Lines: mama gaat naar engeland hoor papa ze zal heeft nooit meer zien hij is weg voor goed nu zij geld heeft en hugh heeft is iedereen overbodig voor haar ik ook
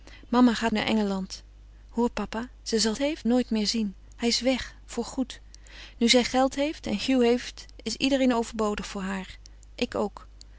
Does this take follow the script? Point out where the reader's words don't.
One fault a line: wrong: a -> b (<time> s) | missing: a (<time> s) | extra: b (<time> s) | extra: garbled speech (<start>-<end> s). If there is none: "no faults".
no faults